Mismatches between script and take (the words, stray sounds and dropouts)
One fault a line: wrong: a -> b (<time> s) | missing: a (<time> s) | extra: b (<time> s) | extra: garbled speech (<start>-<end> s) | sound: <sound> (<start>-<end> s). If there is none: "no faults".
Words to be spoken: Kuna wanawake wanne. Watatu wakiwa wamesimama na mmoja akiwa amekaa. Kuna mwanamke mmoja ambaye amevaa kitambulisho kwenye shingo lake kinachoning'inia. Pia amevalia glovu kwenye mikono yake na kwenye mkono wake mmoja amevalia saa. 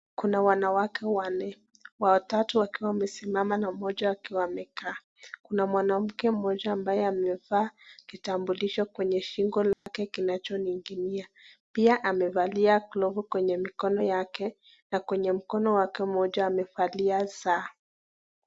sound: dropout (9.7-9.9 s)